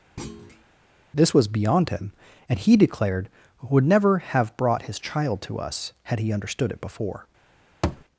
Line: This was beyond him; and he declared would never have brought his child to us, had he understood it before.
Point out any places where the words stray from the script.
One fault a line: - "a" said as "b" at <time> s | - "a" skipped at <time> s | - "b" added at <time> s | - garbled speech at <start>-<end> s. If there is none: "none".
none